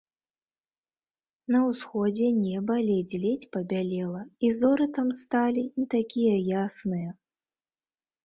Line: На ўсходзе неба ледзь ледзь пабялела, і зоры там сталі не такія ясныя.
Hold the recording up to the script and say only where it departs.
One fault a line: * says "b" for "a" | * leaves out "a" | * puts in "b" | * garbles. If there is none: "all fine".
all fine